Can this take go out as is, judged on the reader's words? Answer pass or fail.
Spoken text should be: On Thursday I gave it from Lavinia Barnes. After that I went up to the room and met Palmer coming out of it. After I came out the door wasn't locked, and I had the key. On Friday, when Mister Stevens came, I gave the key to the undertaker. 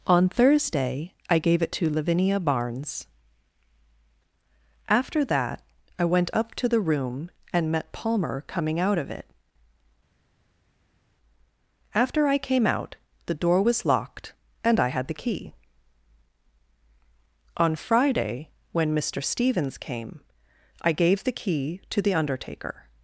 fail